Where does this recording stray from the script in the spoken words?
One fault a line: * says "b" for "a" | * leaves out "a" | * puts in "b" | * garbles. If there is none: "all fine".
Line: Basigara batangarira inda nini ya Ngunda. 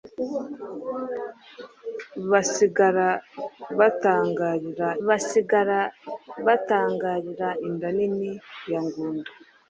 * puts in "basigara batangarira"